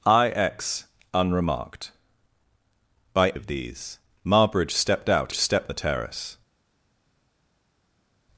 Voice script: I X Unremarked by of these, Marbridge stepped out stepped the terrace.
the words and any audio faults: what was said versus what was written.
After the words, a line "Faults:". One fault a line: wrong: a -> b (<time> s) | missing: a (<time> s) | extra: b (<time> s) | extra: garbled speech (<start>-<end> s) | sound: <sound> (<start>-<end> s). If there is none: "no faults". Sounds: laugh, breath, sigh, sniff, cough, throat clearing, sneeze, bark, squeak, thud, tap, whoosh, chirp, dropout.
I X Unremarked by of these, Marbridge stepped out stepped the terrace.
Faults:
no faults